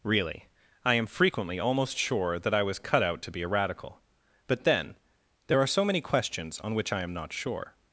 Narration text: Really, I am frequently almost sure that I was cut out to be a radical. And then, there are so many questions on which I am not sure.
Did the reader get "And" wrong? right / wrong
wrong